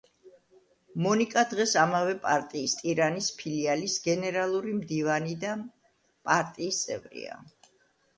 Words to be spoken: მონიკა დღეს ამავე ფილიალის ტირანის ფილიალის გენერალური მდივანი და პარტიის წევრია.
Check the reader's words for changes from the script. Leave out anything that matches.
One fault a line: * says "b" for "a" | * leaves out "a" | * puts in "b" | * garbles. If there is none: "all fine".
* says "პარტიის" for "ფილიალის"